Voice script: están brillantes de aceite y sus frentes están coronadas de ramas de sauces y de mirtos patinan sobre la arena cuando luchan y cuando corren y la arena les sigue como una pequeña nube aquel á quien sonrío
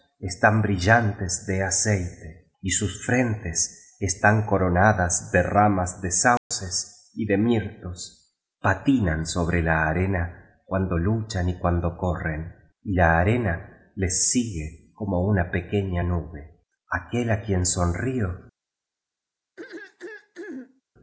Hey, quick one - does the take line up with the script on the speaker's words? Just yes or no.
yes